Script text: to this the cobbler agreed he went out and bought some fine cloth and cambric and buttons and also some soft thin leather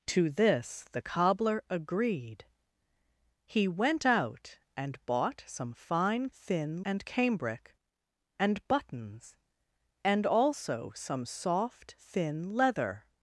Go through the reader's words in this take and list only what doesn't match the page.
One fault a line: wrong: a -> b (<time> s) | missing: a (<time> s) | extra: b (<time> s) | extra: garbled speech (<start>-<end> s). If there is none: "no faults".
wrong: cloth -> thin (6.3 s)